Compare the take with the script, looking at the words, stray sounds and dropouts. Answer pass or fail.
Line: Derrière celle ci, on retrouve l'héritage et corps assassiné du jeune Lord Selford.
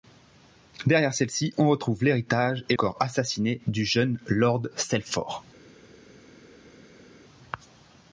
pass